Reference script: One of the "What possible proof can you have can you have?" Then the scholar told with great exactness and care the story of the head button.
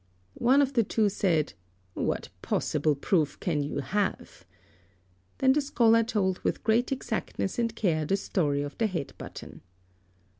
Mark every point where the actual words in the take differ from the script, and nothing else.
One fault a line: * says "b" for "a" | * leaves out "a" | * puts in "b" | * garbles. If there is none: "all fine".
* puts in "two said"
* leaves out "can you have"